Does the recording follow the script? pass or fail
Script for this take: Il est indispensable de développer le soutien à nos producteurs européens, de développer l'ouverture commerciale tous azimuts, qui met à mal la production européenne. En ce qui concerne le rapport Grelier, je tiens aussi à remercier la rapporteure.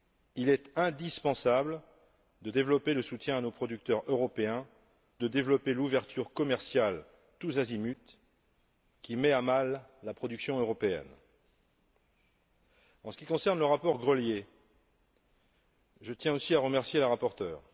pass